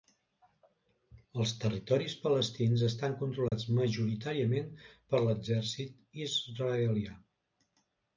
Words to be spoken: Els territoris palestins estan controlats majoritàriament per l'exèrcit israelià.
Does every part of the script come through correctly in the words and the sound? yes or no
no